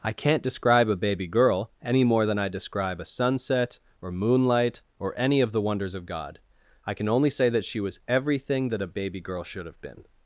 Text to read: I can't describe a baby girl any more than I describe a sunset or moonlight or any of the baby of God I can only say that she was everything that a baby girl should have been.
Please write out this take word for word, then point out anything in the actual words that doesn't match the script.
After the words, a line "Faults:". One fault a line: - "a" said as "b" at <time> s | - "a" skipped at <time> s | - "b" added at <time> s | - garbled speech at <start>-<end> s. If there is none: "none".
I can't describe a baby girl any more than I describe a sunset or moonlight or any of the wonders of God I can only say that she was everything that a baby girl should have been.
Faults:
- "baby" said as "wonders" at 5.6 s